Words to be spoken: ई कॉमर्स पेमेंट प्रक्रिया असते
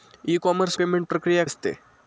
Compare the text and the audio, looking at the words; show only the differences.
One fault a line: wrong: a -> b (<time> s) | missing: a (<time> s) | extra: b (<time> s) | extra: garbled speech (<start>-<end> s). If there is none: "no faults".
no faults